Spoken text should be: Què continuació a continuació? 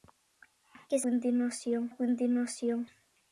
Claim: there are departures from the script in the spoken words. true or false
false